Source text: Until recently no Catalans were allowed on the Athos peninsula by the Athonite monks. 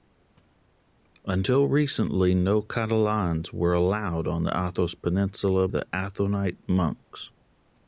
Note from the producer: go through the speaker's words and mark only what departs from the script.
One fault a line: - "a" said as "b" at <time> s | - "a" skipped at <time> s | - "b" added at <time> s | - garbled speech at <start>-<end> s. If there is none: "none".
- "by" skipped at 5.7 s